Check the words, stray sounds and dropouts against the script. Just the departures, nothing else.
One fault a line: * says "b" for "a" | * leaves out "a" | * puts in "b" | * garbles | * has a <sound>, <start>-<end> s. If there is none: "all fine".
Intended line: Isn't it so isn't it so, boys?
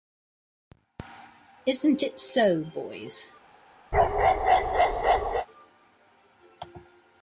* leaves out "isn't it so"
* has a bark, 3.9-5.5 s